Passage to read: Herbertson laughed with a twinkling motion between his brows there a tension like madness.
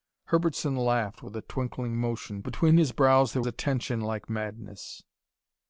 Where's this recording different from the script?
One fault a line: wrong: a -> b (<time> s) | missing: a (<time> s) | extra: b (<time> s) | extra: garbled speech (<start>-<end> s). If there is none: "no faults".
no faults